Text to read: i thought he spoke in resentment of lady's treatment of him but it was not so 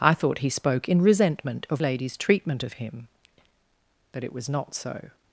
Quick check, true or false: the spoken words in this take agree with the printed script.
true